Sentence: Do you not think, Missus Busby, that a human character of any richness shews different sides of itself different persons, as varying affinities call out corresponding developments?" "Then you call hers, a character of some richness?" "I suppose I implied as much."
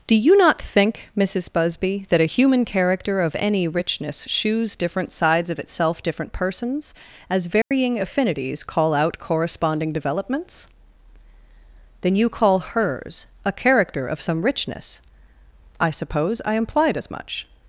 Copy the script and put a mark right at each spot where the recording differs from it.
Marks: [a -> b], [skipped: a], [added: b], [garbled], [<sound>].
Do you not think, Missus Busby, that a human character of any richness shews different sides of itself different persons, as varying [dropout] affinities call out corresponding developments?" "Then you call hers, a character of some richness?" "I suppose I implied as much."